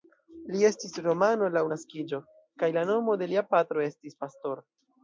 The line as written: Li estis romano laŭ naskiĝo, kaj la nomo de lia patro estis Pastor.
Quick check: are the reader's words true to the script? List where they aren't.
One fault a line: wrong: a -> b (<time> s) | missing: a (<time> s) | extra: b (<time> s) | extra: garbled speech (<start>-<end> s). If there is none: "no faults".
no faults